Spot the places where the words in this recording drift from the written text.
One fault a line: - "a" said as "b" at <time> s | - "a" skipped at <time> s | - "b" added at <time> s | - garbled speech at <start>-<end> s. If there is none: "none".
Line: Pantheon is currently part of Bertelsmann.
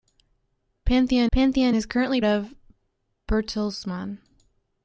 - "pantheon" added at 1.3 s
- "part" skipped at 2.2 s